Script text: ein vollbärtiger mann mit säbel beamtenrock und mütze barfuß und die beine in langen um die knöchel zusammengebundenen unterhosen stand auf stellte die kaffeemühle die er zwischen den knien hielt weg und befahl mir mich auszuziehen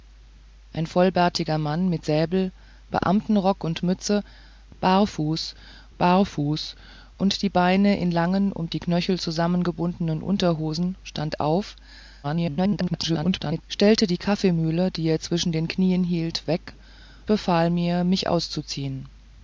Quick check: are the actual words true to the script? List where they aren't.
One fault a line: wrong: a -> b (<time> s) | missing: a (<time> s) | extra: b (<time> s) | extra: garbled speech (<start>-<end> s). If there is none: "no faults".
extra: barfuß (6.0 s)
extra: garbled speech (12.2-13.6 s)
missing: und (16.7 s)